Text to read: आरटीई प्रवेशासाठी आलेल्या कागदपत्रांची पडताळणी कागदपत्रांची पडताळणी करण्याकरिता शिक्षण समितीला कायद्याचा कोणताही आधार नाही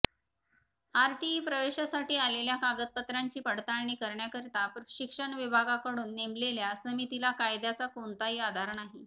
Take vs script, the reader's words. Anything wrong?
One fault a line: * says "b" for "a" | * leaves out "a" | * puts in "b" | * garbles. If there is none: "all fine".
* says "करण्याकरिता शिक्षण विभागाकडून नेमलेल्या" for "कागदपत्रांची पडताळणी करण्याकरिता शिक्षण"